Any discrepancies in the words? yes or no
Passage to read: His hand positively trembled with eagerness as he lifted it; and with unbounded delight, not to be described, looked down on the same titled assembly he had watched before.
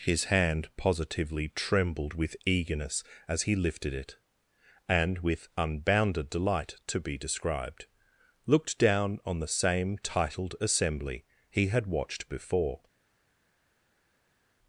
yes